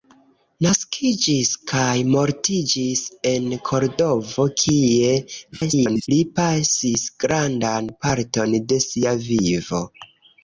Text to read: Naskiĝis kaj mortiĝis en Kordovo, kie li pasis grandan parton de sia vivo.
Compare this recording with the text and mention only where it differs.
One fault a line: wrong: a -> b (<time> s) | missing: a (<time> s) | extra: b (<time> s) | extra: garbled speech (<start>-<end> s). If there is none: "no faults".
extra: garbled speech (5.5-6.1 s)